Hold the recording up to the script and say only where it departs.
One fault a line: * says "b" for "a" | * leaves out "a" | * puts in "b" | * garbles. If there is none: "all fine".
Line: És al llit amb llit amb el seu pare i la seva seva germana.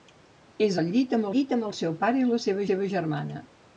all fine